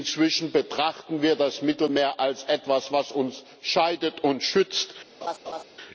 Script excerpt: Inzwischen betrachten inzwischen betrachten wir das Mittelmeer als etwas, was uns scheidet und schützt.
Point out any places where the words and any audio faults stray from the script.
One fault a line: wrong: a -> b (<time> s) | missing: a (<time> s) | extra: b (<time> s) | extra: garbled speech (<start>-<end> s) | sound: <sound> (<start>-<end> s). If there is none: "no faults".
missing: inzwischen betrachten (1.2 s)
sound: laugh (5.2-5.6 s)